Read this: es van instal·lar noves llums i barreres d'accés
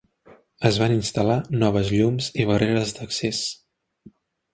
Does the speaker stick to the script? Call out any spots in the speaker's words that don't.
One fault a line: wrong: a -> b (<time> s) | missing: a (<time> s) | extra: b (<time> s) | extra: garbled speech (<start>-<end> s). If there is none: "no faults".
no faults